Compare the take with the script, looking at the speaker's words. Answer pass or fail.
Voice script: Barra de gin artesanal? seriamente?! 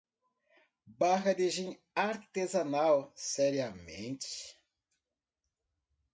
pass